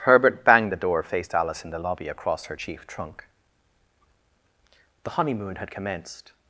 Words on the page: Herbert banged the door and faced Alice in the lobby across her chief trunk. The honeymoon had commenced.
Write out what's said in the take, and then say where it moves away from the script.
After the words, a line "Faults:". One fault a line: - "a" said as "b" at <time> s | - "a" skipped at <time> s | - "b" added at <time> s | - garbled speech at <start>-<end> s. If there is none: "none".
Herbert banged the door faced Alice in the lobby across her chief trunk. The honeymoon had commenced.
Faults:
- "and" skipped at 1.0 s